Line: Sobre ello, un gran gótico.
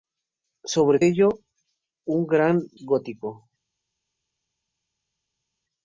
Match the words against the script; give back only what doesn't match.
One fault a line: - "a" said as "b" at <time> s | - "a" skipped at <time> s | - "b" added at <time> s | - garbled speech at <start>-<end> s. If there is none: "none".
none